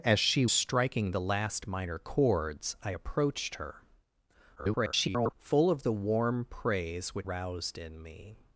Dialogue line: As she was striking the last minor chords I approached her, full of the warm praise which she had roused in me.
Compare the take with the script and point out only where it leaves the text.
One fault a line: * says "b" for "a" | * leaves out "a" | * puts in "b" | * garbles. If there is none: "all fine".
* leaves out "was"
* garbles
* leaves out "she had"